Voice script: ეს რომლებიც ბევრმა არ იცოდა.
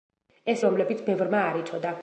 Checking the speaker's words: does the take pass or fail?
pass